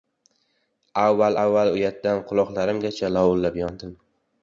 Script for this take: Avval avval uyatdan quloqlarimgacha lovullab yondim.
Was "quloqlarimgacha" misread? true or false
false